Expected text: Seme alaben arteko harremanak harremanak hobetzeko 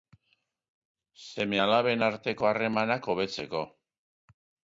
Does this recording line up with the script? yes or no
no